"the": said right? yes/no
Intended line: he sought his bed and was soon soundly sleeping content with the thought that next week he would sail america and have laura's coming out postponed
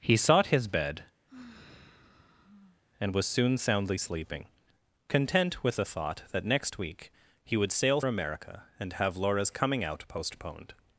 yes